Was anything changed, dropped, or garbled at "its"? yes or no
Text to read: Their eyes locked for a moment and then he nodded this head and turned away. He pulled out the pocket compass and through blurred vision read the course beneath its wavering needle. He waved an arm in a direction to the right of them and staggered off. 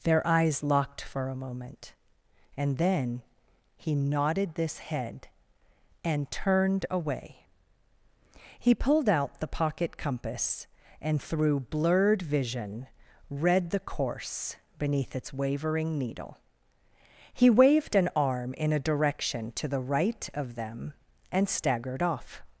no